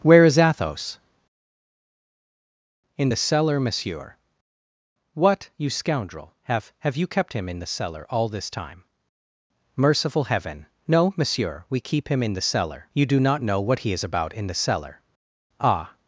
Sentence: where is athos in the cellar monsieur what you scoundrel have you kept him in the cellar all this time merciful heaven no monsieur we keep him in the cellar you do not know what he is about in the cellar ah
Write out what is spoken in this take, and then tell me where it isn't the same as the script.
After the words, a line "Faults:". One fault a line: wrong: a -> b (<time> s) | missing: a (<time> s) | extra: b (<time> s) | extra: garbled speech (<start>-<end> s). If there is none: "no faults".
where is athos in the cellar monsieur what you scoundrel have have you kept him in the cellar all this time merciful heaven no monsieur we keep him in the cellar you do not know what he is about in the cellar ah
Faults:
extra: have (6.8 s)